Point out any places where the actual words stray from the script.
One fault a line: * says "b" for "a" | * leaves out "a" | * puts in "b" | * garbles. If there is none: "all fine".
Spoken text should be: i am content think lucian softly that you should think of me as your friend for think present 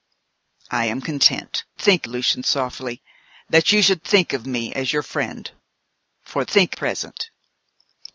all fine